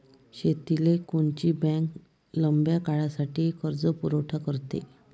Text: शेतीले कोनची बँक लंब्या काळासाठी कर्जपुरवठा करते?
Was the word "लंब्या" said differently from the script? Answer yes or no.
no